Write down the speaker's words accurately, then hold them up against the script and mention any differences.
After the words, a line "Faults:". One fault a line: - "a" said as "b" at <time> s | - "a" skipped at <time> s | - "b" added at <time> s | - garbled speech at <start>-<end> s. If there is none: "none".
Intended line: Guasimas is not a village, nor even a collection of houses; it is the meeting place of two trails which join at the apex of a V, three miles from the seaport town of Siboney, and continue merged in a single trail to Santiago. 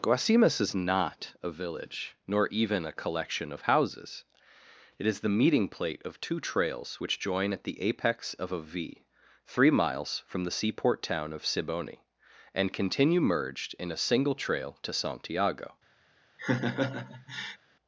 Guasimas is not a village, nor even a collection of houses; it is the meeting plate of two trails which join at the apex of a V, three miles from the seaport town of Siboney, and continue merged in a single trail to Santiago.
Faults:
- "place" said as "plate" at 5.7 s